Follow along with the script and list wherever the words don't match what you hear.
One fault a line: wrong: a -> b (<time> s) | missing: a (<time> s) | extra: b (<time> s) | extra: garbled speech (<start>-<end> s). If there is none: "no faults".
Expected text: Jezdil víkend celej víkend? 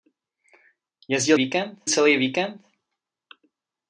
no faults